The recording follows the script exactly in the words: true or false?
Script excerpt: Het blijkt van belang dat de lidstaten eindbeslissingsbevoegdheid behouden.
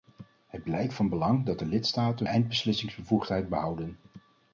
true